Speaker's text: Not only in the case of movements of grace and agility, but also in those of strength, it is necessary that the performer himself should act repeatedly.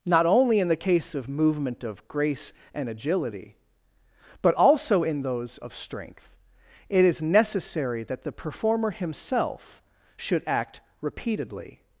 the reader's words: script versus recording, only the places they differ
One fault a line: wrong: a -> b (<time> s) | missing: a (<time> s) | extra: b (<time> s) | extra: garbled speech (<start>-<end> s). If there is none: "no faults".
wrong: movements -> movement (1.3 s)